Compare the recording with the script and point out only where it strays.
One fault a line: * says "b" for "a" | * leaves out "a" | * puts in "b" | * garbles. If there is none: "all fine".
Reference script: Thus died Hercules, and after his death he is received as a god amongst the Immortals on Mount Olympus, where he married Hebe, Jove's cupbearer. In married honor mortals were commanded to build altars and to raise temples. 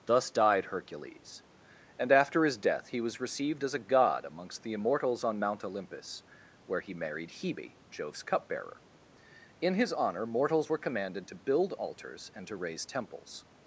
* says "was" for "is"
* says "his" for "married"